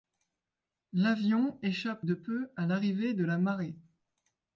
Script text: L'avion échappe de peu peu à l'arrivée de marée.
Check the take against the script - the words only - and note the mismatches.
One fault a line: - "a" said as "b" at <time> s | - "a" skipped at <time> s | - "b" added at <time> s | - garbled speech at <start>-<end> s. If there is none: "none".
- "peu" skipped at 2.5 s
- "la" added at 3.2 s